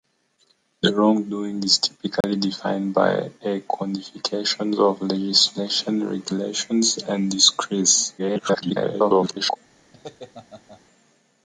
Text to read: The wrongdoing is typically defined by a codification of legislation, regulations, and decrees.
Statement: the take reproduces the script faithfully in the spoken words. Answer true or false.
false